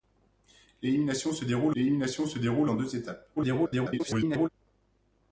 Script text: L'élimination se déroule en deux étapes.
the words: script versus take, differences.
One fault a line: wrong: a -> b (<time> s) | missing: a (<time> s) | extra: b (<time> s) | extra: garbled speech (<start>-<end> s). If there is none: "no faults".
extra: l'élimination se déroule (1.7 s)
extra: garbled speech (3.4-4.5 s)